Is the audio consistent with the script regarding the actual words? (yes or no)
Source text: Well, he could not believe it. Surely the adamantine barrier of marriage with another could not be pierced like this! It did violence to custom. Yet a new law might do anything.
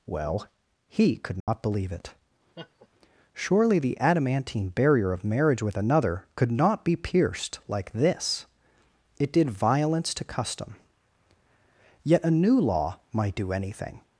yes